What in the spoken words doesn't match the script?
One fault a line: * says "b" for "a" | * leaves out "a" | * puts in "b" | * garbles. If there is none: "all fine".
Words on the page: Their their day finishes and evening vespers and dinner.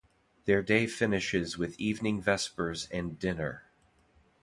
* leaves out "their"
* says "with" for "and"